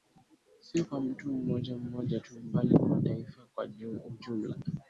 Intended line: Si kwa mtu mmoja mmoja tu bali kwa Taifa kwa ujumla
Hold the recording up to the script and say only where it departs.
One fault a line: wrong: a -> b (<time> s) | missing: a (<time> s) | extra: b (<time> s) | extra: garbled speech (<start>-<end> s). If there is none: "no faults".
no faults